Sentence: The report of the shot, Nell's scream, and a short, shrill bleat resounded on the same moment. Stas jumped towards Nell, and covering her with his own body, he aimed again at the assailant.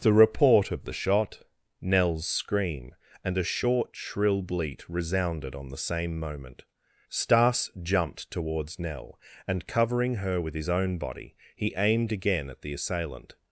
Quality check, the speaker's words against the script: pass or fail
pass